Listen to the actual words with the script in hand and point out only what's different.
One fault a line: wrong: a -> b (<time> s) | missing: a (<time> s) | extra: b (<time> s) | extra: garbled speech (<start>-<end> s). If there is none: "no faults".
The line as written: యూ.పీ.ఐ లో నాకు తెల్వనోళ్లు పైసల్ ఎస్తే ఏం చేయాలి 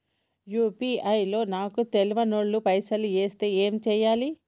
no faults